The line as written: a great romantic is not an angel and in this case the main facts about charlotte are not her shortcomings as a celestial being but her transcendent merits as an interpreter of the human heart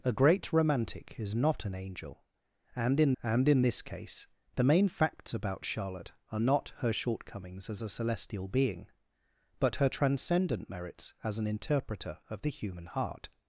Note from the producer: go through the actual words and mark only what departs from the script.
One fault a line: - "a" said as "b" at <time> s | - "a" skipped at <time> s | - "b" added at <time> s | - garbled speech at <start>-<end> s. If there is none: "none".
- "and in" added at 3.2 s